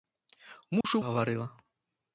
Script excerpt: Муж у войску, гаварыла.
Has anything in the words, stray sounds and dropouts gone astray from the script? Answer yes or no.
yes